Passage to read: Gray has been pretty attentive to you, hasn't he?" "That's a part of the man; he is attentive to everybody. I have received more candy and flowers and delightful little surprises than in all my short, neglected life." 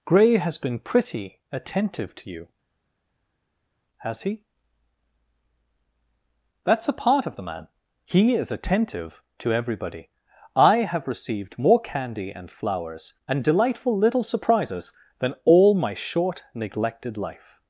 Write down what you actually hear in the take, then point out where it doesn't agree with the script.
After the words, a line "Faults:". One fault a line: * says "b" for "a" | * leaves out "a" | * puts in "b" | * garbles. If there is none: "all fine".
Gray has been pretty attentive to you, has he?" "That's a part of the man; he is attentive to everybody. I have received more candy and flowers and delightful little surprises than all my short, neglected life."
Faults:
* says "has" for "hasn't"
* leaves out "in"